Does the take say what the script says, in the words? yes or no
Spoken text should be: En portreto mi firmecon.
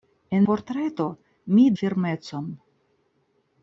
yes